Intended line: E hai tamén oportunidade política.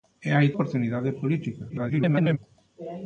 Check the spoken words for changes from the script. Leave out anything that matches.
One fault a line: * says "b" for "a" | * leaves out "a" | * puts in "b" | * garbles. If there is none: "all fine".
* leaves out "tamén"
* garbles